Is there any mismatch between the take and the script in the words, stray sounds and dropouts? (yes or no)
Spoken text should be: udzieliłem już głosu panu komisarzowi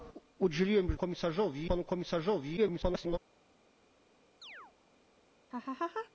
yes